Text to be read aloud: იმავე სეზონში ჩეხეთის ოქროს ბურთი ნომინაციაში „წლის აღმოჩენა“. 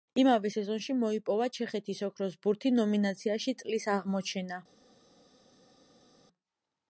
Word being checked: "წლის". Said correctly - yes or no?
yes